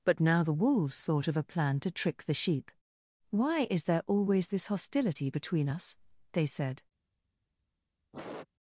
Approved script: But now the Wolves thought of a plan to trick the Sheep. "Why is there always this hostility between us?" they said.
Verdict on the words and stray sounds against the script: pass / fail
fail